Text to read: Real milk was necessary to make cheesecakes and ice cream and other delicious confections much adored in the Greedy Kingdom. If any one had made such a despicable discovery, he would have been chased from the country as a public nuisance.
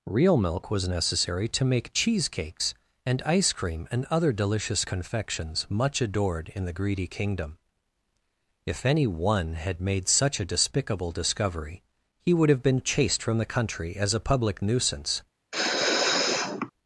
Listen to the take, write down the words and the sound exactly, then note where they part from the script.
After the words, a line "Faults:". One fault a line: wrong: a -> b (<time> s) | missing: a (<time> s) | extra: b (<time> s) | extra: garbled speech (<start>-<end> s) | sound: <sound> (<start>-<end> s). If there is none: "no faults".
Real milk was necessary to make cheesecakes and ice cream and other delicious confections much adored in the Greedy Kingdom. If any one had made such a despicable discovery, he would have been chased from the country as a public nuisance.
Faults:
sound: sneeze (15.5-16.7 s)